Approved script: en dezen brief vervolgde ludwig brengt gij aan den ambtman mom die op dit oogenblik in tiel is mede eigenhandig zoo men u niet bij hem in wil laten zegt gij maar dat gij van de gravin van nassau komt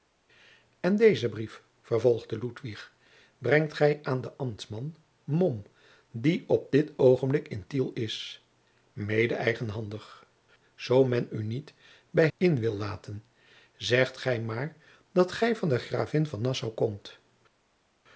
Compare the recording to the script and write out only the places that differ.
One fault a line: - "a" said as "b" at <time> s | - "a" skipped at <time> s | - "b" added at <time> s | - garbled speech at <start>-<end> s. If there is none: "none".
- "hem" skipped at 12.3 s